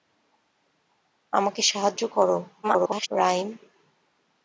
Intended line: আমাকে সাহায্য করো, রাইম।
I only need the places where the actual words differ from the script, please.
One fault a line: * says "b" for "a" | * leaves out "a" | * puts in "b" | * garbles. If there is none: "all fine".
* garbles